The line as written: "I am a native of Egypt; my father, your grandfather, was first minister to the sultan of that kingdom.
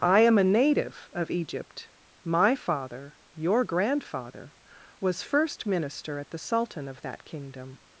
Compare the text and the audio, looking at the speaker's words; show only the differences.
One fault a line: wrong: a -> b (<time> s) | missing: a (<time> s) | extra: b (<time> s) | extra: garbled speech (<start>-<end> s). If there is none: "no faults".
wrong: to -> at (6.2 s)